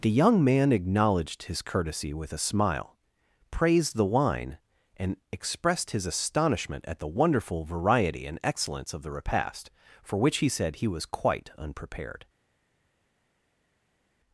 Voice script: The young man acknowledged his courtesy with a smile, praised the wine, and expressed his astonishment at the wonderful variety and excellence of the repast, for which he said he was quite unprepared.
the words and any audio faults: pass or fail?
pass